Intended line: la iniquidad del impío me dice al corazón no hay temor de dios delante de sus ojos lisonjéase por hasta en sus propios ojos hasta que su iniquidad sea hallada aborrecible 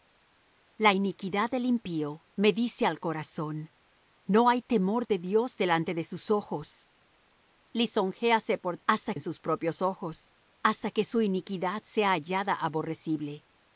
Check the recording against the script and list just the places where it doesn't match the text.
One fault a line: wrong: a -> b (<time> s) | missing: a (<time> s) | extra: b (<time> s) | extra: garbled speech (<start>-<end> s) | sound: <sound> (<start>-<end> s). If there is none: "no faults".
no faults